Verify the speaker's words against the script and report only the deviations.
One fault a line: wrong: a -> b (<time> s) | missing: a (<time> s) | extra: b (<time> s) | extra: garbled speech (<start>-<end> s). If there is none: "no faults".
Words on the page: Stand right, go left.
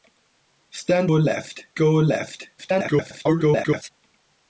wrong: right -> left (1.1 s)
extra: garbled speech (2.6-3.9 s)